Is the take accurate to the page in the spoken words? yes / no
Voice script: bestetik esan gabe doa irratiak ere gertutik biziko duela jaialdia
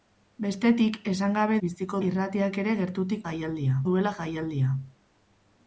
no